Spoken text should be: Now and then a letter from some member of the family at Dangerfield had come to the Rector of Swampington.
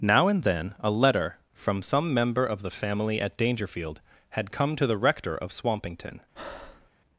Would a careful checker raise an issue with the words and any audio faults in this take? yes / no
yes